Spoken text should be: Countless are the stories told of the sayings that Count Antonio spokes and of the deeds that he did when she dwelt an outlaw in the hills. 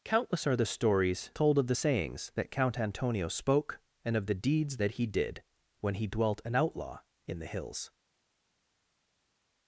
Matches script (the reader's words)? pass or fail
fail